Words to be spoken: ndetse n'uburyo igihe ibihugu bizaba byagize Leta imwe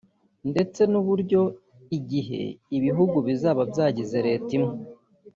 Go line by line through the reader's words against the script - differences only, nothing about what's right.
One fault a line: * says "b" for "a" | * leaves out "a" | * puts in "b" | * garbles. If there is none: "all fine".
all fine